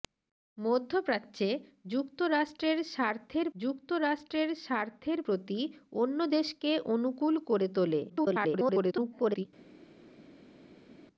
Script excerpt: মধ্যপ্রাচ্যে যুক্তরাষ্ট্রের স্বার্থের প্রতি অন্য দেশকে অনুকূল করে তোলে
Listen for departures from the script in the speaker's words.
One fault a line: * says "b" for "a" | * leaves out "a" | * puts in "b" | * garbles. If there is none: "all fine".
* puts in "যুক্তরাষ্ট্রের স্বার্থের"
* garbles